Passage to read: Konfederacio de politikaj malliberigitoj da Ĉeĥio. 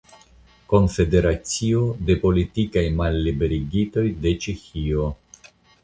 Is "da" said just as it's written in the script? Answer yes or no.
no